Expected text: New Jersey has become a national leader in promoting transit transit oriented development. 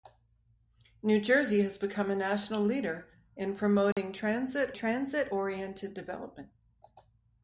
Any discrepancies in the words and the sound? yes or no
yes